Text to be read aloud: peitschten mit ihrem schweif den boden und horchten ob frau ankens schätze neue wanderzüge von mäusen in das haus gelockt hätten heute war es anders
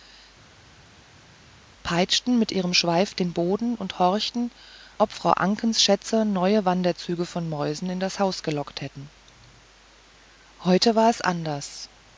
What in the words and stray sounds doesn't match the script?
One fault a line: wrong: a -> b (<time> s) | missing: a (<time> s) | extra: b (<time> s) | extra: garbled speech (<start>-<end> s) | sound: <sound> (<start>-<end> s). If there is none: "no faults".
no faults